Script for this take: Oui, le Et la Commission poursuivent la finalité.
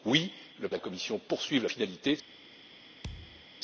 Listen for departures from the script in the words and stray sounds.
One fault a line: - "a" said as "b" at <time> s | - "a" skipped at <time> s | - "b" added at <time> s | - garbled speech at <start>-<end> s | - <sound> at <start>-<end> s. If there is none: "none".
- thud at 3.0-3.5 s